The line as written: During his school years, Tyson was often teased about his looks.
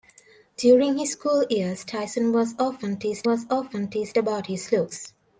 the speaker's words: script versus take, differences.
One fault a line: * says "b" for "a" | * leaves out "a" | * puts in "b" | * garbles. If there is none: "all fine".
* puts in "was often teased"